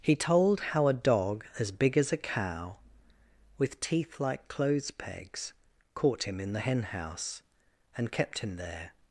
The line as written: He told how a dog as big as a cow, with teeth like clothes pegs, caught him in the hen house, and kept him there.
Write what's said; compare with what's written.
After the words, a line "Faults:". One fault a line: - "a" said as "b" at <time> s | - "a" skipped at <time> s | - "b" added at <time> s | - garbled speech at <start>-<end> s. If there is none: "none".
He told how a dog as big as a cow, with teeth like clothes pegs, caught him in the hen house, and kept him there.
Faults:
none